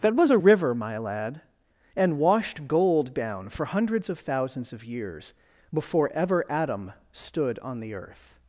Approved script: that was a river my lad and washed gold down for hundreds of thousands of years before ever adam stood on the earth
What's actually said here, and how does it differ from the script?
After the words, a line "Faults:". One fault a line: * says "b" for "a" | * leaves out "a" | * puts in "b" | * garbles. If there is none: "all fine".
that was a river my lad and washed gold down for hundreds of thousands of years before ever adam stood on the earth
Faults:
all fine